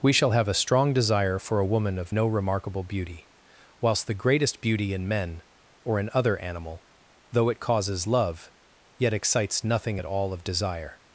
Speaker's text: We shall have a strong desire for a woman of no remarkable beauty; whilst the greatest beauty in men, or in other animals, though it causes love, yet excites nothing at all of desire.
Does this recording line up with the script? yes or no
no